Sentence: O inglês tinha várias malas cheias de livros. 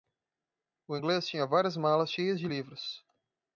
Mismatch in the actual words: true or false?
false